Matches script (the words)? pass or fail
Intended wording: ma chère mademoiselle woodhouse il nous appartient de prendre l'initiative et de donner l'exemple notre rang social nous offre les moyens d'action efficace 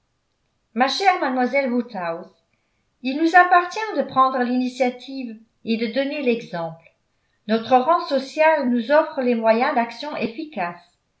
pass